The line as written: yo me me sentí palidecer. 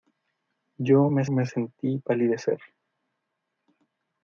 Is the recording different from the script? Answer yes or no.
no